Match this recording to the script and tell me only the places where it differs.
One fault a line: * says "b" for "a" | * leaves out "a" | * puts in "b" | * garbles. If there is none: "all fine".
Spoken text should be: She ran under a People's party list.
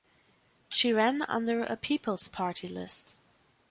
all fine